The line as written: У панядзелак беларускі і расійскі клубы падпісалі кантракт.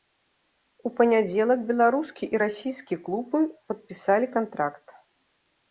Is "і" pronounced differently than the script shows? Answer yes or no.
no